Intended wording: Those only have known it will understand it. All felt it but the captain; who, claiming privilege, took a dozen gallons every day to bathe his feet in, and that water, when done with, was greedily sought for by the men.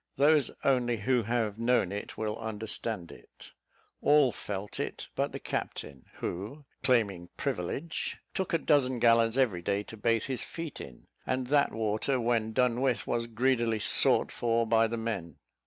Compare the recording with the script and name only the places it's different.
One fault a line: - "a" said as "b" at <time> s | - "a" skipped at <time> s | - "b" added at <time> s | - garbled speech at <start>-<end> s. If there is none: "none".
- "who" added at 1.0 s